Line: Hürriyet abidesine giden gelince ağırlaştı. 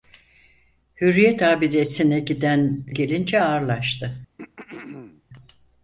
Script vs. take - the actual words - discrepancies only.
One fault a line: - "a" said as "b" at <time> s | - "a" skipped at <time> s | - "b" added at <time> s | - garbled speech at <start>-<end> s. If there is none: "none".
none